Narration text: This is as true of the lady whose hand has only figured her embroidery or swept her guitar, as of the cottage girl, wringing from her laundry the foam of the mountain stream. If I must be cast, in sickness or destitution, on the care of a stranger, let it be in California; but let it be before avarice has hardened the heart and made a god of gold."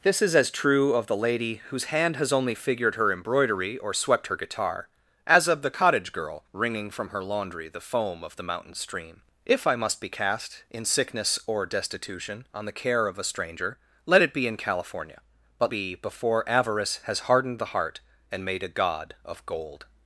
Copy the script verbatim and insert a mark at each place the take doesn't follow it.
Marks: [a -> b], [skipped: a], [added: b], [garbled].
This is as true of the lady whose hand has only figured her embroidery or swept her guitar, as of the cottage girl, wringing from her laundry the foam of the mountain stream. If I must be cast, in sickness or destitution, on the care of a stranger, let it be in California; but [skipped: let it] be before avarice has hardened the heart and made a god of gold."